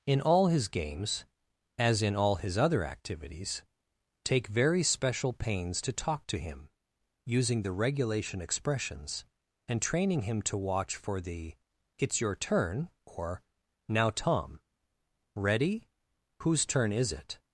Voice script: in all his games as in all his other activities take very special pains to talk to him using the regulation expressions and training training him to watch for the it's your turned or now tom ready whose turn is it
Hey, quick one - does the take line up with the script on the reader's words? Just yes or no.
no